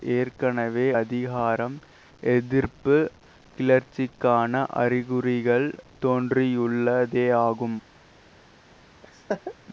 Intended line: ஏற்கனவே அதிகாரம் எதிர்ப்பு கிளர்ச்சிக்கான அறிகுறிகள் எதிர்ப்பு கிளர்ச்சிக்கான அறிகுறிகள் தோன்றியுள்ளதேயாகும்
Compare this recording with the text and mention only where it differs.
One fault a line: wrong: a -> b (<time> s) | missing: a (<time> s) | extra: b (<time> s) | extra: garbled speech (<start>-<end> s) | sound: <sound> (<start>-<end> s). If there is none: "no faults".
missing: எதிர்ப்பு கிளர்ச்சிக்கான அறிகுறிகள் (5.7 s)
sound: laugh (9.0-9.5 s)